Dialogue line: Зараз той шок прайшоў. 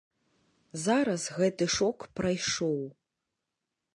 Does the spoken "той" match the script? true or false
false